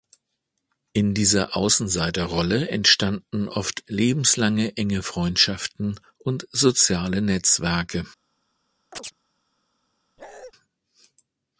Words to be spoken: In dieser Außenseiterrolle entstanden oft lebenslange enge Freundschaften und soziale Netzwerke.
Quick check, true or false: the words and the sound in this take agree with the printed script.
false